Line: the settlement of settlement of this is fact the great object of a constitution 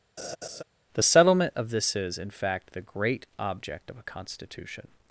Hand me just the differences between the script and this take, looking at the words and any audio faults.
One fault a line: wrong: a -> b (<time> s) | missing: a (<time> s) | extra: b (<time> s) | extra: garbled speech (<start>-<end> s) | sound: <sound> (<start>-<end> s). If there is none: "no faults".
sound: laugh (0.2-0.6 s)
missing: settlement of (1.7 s)
extra: in (2.2 s)